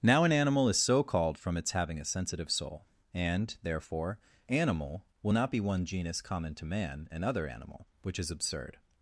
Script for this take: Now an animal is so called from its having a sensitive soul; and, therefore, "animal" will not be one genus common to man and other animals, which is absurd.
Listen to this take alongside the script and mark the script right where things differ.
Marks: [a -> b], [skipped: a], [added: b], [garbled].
Now an animal is so called from its having a sensitive soul; and, therefore, "animal" will not be one genus common to man and other [animals, -> animal] which is absurd.